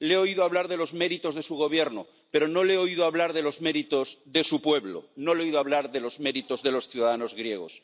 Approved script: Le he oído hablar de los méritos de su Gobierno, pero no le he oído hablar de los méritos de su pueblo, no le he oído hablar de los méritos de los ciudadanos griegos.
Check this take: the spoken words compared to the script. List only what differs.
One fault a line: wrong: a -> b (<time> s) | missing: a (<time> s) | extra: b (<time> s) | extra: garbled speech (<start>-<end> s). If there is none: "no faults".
no faults